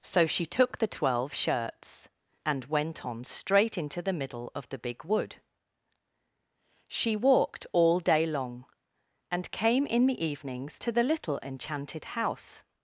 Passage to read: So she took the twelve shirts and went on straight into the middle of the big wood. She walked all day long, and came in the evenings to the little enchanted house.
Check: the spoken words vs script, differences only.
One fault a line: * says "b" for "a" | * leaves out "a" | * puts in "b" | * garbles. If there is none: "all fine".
all fine